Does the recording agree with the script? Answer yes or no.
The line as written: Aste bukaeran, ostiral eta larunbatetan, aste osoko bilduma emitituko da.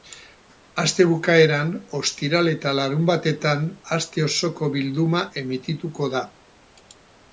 yes